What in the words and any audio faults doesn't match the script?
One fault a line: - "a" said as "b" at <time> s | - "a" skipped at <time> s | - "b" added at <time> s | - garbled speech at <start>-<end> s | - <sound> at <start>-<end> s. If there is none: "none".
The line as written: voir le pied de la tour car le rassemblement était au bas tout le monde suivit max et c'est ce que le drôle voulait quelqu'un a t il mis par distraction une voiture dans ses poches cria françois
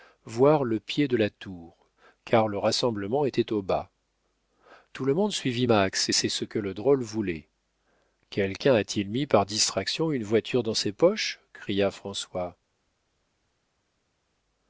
none